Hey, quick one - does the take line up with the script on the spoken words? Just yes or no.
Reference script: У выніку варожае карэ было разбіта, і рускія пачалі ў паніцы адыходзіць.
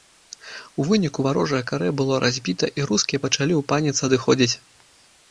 yes